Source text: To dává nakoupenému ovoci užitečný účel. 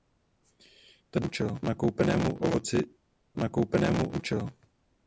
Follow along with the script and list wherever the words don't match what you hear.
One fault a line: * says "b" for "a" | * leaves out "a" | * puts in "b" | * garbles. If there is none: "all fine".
* says "účel" for "dává"
* says "nakoupenému" for "užitečný"